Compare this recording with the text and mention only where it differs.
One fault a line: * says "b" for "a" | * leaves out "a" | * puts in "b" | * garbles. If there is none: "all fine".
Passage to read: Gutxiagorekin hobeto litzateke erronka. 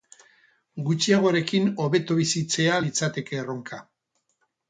* puts in "bizitzea"